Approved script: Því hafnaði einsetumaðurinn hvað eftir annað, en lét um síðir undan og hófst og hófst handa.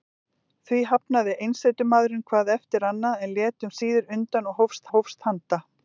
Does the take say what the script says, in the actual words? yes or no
yes